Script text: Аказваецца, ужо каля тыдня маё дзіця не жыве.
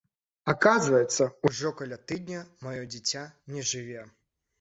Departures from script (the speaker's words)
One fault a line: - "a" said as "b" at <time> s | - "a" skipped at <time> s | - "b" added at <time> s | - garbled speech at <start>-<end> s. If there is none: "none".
none